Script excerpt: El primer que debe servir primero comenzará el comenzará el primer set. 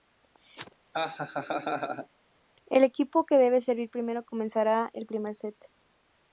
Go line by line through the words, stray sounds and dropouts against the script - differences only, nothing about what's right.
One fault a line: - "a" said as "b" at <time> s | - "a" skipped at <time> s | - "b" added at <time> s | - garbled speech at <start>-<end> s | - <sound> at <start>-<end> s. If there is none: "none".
- laugh at 0.9-2.1 s
- "primer" said as "equipo" at 2.8 s
- "comenzará el" skipped at 5.1 s